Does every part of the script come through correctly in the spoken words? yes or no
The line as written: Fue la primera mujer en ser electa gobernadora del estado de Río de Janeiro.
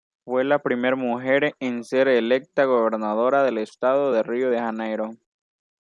yes